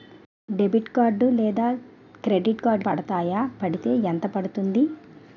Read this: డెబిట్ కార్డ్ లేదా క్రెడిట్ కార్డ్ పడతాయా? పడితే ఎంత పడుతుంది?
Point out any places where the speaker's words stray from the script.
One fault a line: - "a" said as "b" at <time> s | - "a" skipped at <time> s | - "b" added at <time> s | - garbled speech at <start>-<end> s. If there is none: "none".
none